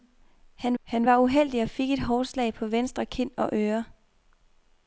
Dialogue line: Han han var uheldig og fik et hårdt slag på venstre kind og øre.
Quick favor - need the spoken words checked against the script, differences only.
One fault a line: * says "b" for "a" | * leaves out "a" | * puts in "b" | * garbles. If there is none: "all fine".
all fine